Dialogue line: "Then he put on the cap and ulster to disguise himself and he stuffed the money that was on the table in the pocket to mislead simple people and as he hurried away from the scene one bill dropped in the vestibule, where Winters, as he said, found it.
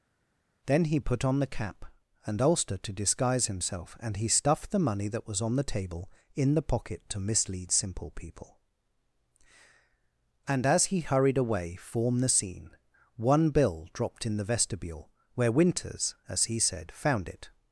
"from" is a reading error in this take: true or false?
true